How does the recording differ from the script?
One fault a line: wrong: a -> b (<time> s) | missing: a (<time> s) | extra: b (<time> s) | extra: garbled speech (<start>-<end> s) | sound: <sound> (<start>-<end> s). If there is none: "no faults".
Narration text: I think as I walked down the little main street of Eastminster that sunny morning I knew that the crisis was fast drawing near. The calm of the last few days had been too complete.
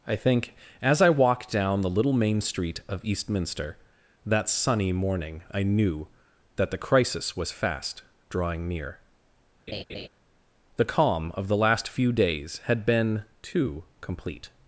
sound: laugh (9.7-10.1 s)